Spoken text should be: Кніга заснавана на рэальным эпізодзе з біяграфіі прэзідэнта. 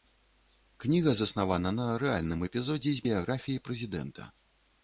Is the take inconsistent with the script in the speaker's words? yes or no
no